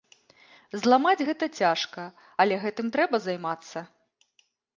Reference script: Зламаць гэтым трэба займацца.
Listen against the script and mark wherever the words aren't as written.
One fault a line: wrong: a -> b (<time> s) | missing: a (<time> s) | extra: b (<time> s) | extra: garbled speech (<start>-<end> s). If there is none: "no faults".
extra: гэта цяжка але (1.3 s)